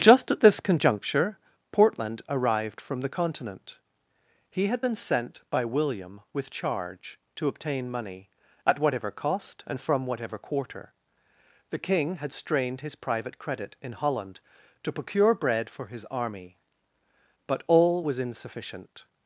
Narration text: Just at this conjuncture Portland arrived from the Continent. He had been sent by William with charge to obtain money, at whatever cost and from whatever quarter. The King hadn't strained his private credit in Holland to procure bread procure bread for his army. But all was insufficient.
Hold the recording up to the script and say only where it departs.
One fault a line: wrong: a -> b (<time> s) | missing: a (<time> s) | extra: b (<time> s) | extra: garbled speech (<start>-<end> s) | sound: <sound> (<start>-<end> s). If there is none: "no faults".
wrong: hadn't -> had (12.2 s)
missing: procure bread (15.7 s)